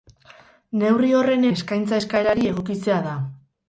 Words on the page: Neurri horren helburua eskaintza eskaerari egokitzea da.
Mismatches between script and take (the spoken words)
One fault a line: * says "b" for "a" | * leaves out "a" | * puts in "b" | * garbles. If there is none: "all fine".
* leaves out "helburua"